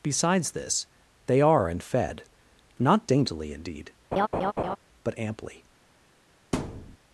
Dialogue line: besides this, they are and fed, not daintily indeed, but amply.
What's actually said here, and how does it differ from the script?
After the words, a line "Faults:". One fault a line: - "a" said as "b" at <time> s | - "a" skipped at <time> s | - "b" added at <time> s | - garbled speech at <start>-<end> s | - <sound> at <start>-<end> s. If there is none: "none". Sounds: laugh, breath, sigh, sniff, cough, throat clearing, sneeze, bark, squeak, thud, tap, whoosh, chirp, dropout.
besides this, they are and fed, not daintily indeed, but amply.
Faults:
- laugh at 4.1-4.8 s
- thud at 6.5-7.0 s